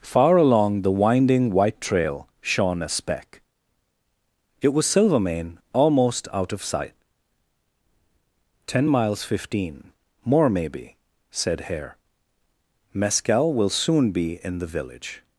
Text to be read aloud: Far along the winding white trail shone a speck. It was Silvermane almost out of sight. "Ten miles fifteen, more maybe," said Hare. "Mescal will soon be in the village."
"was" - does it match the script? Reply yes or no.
yes